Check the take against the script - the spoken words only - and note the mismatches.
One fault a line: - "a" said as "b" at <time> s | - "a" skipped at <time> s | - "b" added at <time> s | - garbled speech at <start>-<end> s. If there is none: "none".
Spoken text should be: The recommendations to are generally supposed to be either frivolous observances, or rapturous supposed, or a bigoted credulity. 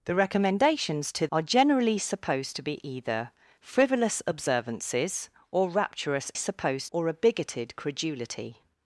none